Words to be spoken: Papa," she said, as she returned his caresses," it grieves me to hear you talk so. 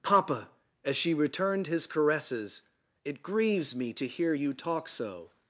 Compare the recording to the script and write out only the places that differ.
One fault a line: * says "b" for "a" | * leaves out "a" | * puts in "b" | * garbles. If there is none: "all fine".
* leaves out "she said"